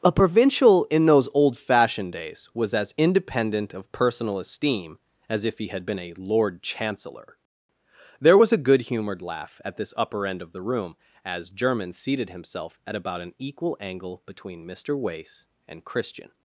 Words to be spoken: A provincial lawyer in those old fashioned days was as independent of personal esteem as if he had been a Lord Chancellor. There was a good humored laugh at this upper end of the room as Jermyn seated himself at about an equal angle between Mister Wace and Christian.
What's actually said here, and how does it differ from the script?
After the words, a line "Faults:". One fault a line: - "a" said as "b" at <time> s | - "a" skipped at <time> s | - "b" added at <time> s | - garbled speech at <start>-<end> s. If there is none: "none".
A provincial in those old fashioned days was as independent of personal esteem as if he had been a Lord Chancellor. There was a good humored laugh at this upper end of the room as Jermyn seated himself at about an equal angle between Mister Wace and Christian.
Faults:
- "lawyer" skipped at 0.8 s